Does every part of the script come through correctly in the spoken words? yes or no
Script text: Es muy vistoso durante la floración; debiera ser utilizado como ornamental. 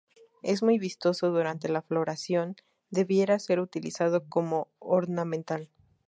yes